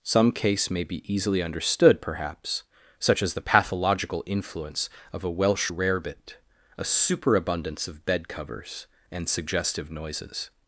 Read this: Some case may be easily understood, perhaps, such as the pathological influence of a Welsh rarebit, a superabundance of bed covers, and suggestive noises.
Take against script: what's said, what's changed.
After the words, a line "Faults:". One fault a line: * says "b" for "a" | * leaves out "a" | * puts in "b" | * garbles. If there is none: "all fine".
Some case may be easily understood, perhaps, such as the pathological influence of a Welsh rarebit, a superabundance of bed covers, and suggestive noises.
Faults:
all fine